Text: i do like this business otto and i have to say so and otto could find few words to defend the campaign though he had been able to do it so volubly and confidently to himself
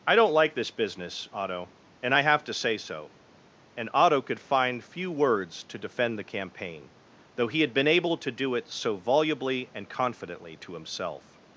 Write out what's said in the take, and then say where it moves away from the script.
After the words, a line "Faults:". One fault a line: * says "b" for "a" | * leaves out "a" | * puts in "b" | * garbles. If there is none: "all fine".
i don't like this business otto and i have to say so and otto could find few words to defend the campaign though he had been able to do it so volubly and confidently to himself
Faults:
* says "don't" for "do"